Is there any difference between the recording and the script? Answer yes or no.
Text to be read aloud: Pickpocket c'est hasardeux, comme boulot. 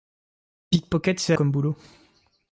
yes